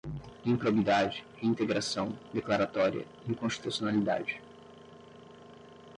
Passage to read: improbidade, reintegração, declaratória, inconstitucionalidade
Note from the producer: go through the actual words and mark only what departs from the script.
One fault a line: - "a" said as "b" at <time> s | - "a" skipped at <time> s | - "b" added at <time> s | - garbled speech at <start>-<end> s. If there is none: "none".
none